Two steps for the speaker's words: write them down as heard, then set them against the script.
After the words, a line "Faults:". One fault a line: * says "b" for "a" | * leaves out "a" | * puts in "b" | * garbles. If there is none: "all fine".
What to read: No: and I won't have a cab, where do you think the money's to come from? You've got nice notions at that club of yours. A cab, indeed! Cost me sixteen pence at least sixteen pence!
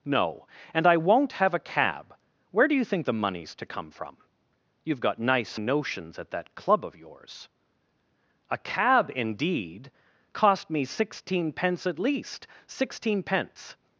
No: and I won't have a cab, where do you think the money's to come from? You've got nice notions at that club of yours. A cab, indeed! Cost me sixteen pence at least sixteen pence!
Faults:
all fine